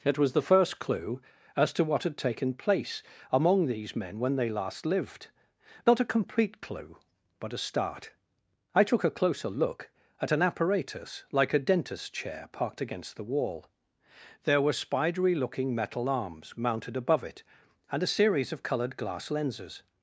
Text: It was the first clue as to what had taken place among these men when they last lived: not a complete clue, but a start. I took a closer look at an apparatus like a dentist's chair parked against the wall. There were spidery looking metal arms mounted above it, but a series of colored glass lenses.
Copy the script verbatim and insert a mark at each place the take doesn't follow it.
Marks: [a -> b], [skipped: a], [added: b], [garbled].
It was the first clue as to what had taken place among these men when they last lived: not a complete clue, but a start. I took a closer look at an apparatus like a dentist's chair parked against the wall. There were spidery looking metal arms mounted above it, [but -> and] a series of colored glass lenses.